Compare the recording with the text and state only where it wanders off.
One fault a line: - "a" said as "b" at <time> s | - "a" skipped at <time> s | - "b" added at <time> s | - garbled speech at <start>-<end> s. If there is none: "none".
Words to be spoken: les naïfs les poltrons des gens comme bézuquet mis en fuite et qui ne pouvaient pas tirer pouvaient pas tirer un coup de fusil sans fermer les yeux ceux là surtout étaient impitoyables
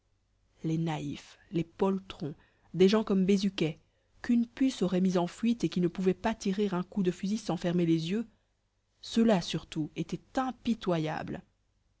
- "qu'une puce aurait" added at 4.2 s
- "pouvaient pas tirer" skipped at 6.7 s